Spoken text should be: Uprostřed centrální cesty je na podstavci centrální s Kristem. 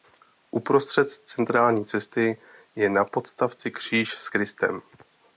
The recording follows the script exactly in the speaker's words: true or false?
false